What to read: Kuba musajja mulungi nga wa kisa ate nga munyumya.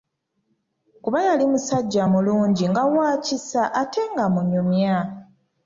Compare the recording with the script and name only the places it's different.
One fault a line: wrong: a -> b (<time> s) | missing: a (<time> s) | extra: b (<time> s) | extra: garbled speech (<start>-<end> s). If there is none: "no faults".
extra: yali (1.3 s)